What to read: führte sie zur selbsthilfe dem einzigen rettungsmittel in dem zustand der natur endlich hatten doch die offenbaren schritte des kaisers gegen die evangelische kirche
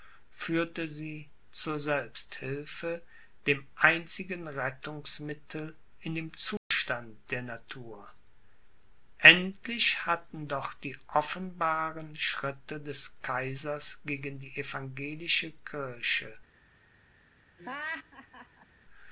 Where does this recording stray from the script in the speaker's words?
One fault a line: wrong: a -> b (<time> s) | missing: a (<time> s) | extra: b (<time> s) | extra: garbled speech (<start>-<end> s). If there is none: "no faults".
no faults